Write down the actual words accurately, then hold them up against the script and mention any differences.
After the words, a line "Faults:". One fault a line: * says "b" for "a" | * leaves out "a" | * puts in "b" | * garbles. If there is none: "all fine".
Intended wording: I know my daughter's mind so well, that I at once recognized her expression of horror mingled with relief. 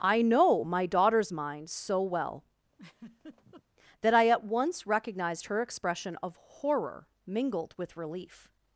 I know my daughter's mind so well, that I at once recognized her expression of horror mingled with relief.
Faults:
all fine